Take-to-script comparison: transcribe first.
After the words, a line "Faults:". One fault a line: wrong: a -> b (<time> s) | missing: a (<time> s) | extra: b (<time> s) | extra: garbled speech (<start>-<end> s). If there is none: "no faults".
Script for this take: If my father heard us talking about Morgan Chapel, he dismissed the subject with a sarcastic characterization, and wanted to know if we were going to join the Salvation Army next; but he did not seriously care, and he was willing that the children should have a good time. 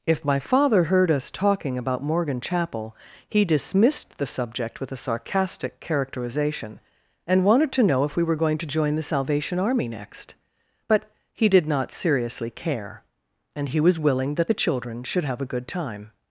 If my father heard us talking about Morgan Chapel, he dismissed the subject with a sarcastic characterization, and wanted to know if we were going to join the Salvation Army next; but he did not seriously care, and he was willing that the children should have a good time.
Faults:
no faults